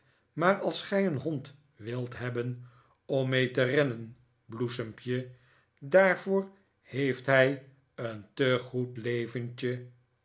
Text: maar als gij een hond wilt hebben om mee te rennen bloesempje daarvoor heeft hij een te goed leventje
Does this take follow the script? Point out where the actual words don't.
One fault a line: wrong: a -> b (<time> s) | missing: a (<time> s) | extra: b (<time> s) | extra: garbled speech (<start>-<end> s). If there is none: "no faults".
no faults